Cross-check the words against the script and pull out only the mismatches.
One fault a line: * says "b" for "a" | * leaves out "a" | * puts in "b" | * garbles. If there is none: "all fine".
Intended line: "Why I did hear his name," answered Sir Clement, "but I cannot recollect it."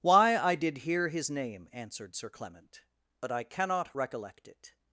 all fine